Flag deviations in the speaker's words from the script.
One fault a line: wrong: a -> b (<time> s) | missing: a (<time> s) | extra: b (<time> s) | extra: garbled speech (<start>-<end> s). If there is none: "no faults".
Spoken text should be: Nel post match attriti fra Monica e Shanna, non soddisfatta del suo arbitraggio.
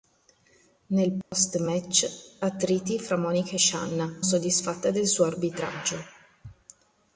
missing: non (4.2 s)